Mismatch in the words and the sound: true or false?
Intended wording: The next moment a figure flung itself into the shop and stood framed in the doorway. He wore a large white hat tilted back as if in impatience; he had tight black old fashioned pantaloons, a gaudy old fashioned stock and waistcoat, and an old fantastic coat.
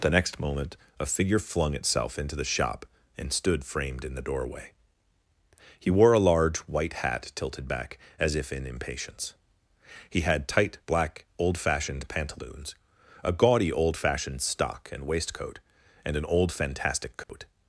true